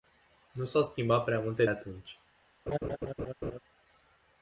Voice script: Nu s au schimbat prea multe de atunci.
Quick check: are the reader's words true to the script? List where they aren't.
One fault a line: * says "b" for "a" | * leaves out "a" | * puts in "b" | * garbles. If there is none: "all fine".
* leaves out "de"